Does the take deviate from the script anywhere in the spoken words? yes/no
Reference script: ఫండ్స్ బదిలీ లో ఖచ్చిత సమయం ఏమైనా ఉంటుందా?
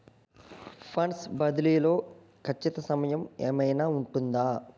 no